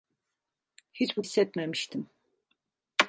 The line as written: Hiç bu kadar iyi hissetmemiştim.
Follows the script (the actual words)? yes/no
no